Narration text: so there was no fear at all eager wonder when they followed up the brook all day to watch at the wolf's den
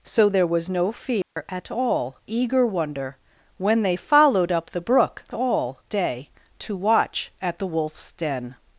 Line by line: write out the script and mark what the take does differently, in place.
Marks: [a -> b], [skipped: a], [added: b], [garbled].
so there was no fear at all eager wonder when they followed up the brook all day to watch at the wolf's den